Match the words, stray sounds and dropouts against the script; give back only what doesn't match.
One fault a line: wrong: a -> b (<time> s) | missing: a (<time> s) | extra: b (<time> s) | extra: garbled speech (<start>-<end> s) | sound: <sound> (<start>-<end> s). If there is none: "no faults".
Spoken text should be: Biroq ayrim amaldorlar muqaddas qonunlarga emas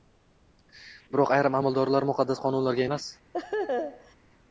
sound: laugh (3.3-4.2 s)